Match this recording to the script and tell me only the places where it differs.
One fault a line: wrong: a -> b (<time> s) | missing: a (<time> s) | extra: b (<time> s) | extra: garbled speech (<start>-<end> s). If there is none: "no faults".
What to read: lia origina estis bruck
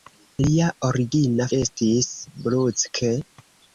no faults